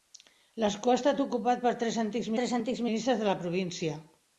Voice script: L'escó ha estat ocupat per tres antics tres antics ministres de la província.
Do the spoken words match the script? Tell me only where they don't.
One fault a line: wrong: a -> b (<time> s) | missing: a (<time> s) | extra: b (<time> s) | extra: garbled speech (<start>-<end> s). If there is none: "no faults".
no faults